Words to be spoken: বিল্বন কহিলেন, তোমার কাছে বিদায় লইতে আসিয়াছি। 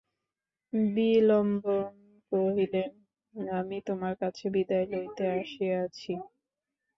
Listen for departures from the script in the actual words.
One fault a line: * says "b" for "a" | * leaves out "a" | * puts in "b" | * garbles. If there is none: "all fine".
* puts in "আমি"